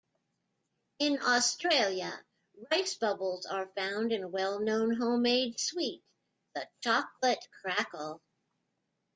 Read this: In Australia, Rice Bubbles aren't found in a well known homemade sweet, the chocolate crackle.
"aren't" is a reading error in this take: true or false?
true